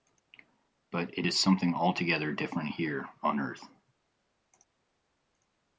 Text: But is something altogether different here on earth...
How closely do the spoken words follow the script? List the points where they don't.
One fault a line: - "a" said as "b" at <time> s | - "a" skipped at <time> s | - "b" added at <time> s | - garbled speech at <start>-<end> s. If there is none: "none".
- "it" added at 1.2 s